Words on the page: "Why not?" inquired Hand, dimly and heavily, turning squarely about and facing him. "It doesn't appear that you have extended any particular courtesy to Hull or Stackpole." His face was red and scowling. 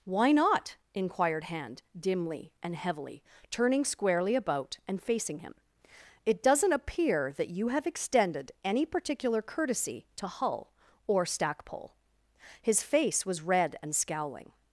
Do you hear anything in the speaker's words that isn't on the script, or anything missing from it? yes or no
no